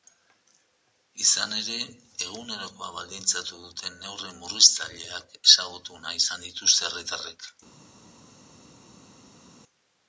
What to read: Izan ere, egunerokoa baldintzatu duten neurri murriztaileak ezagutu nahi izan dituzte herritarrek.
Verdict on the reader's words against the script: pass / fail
pass